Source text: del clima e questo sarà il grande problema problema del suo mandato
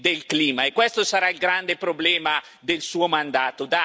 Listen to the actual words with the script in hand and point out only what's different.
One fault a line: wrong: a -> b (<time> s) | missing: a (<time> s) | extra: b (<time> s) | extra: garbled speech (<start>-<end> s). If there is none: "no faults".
missing: problema (2.4 s)